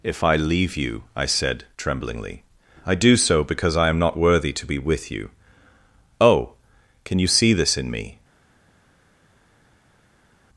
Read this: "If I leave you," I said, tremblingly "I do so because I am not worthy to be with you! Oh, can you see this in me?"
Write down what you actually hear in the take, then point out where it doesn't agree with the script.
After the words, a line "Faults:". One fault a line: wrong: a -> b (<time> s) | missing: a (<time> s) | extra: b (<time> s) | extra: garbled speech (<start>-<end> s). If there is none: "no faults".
"If I leave you," I said, tremblingly "I do so because I am not worthy to be with you! Oh, can you see this in me?"
Faults:
no faults